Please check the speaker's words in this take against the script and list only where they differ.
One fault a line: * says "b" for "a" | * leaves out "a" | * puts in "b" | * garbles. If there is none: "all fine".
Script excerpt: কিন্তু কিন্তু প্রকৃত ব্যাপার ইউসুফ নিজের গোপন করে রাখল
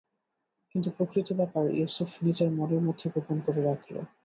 * leaves out "কিন্তু"
* puts in "মনের মধ্যে"